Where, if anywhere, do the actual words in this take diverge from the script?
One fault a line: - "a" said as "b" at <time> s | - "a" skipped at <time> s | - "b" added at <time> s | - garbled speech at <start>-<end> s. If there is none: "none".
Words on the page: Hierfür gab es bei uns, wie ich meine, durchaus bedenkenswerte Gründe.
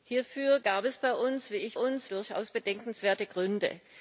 - "meine" said as "uns" at 1.7 s